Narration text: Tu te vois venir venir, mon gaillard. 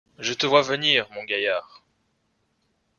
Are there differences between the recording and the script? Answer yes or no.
yes